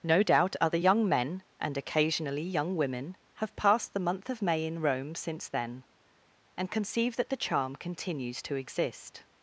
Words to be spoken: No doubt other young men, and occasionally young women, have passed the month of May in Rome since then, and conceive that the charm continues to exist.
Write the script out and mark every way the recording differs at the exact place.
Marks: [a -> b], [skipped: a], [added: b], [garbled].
No doubt other young men, and occasionally young women, have passed the month of May in Rome since then, and conceive that the charm continues to exist.